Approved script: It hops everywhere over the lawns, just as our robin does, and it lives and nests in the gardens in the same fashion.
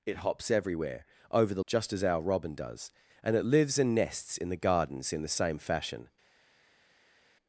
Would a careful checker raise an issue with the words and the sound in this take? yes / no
yes